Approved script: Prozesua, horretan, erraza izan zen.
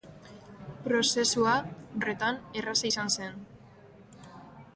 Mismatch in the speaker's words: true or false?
false